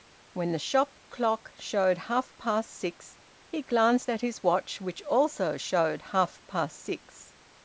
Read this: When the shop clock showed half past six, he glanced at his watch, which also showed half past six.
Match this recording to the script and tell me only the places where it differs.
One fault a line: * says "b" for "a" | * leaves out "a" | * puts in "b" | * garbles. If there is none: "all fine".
all fine